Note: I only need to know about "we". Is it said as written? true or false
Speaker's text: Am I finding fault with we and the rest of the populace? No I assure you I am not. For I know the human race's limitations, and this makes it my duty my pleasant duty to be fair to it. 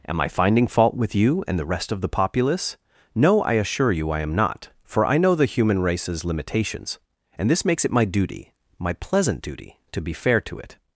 false